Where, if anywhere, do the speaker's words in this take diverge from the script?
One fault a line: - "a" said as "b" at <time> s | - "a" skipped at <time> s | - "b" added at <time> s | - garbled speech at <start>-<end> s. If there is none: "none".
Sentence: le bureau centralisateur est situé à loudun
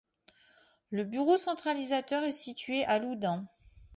none